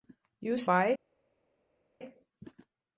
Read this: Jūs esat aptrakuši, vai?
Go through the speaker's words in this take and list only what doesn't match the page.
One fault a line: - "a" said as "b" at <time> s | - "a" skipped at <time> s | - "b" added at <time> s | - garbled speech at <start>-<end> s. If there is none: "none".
- "esat aptrakuši" skipped at 0.7 s